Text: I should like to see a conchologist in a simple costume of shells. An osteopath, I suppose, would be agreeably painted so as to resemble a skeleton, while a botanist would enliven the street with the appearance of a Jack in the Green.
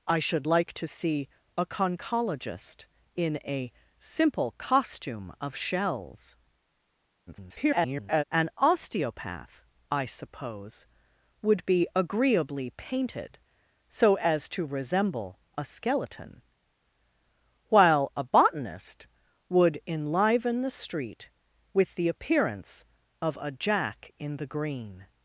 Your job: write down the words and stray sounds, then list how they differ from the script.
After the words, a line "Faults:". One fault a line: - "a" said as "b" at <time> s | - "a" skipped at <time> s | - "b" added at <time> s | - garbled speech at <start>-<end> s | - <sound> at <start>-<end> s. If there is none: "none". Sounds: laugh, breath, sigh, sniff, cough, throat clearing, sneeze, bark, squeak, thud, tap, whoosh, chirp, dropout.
I should like to see a conchologist in a simple costume of shells. [garbled] An osteopath, I suppose, would be agreeably painted so as to resemble a skeleton, while a botanist would enliven the street with the appearance of a Jack in the Green.
Faults:
- garbled speech at 7.3-8.2 s